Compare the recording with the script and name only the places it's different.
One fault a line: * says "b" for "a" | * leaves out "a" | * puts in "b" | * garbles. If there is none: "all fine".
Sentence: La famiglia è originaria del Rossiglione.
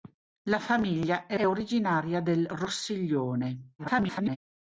* puts in "è"
* garbles